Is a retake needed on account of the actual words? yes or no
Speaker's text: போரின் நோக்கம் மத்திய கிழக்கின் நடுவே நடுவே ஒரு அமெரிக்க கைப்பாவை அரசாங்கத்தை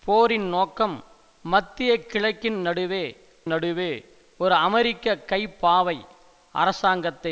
no